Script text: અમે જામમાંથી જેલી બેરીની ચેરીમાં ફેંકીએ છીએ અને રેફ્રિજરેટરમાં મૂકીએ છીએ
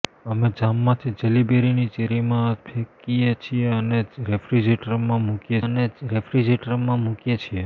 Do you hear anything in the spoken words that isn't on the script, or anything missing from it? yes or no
yes